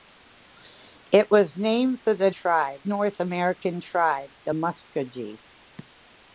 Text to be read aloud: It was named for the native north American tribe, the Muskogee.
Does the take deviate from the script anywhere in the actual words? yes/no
yes